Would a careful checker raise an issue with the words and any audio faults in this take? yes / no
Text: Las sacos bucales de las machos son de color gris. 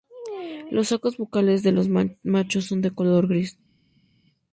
yes